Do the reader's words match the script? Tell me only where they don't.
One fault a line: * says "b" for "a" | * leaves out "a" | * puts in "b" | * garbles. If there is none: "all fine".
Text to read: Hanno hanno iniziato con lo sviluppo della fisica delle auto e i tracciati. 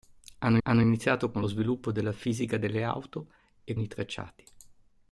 all fine